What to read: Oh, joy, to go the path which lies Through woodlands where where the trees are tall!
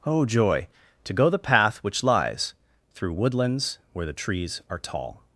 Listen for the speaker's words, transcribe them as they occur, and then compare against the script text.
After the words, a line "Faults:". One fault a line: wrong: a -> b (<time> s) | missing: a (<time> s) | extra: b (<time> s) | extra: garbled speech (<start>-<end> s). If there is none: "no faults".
Oh, joy, to go the path which lies Through woodlands where the trees are tall!
Faults:
missing: where (4.1 s)